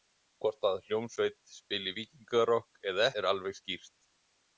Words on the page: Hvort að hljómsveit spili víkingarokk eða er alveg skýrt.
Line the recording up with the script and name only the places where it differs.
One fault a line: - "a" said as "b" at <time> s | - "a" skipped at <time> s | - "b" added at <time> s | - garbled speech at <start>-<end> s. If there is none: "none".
none